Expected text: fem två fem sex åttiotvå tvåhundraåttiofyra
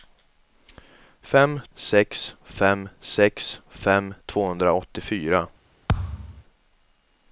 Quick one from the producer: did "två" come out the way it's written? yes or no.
no